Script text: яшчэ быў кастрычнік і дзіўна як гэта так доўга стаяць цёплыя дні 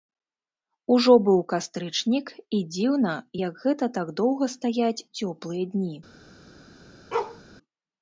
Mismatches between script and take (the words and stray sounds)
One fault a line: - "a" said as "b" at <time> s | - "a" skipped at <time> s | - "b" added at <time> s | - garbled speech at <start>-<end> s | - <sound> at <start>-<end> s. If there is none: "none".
- "яшчэ" said as "ужо" at 0.9 s
- bark at 7.1-7.4 s